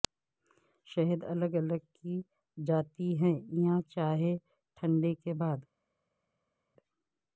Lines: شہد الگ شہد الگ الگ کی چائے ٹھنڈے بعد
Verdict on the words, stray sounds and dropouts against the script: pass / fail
fail